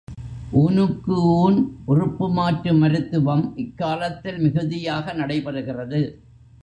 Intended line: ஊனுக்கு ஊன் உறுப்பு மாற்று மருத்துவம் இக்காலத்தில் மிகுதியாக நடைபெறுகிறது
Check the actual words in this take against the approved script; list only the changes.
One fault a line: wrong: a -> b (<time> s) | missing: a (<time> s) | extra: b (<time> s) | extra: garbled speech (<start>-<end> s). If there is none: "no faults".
no faults